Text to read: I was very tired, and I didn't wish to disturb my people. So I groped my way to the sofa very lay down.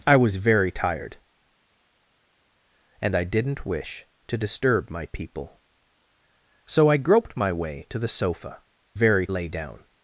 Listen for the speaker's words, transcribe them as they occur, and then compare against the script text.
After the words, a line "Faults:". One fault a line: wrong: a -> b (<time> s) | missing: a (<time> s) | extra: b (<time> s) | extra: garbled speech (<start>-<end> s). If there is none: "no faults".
I was very tired, and I didn't wish to disturb my people. So I groped my way to the sofa very lay down.
Faults:
no faults